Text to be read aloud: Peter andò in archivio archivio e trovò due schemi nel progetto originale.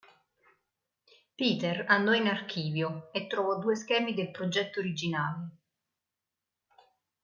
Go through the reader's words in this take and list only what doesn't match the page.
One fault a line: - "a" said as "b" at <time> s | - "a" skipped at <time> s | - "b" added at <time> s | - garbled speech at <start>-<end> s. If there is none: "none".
- "archivio" skipped at 3.1 s
- "nel" said as "del" at 4.1 s